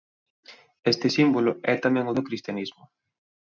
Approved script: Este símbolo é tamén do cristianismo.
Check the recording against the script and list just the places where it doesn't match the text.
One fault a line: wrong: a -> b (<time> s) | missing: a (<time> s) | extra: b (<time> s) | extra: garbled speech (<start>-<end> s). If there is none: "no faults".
no faults